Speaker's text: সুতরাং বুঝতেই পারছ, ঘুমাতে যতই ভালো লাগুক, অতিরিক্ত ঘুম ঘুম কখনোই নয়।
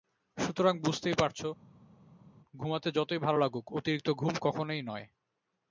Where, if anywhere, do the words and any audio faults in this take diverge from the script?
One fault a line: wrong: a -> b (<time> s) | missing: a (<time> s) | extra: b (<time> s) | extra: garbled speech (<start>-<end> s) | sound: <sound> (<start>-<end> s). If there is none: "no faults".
missing: ঘুম (4.3 s)